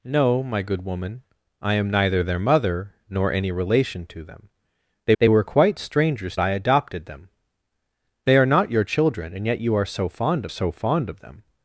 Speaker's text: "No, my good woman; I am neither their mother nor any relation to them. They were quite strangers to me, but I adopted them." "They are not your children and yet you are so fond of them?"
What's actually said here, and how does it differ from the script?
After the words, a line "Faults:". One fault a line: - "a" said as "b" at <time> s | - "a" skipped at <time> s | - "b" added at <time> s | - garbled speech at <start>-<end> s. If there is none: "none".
"No, my good woman; I am neither their mother nor any relation to them. They they were quite strangers I adopted them." "They are not your children and yet you are so fond so fond of them?"
Faults:
- "they" added at 5.2 s
- "to me but" skipped at 6.4 s
- "so fond" added at 10.5 s